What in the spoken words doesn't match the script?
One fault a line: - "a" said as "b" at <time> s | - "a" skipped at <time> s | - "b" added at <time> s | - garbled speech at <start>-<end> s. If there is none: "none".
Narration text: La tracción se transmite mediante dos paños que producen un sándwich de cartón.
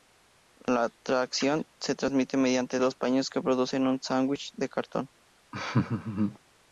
none